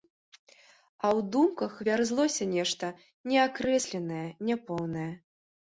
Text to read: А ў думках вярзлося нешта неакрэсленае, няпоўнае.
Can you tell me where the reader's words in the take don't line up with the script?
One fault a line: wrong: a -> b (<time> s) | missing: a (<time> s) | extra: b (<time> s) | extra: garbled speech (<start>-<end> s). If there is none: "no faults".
no faults